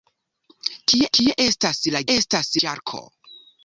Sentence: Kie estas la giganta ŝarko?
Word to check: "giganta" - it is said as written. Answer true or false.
false